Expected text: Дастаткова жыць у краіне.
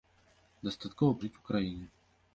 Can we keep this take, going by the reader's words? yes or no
yes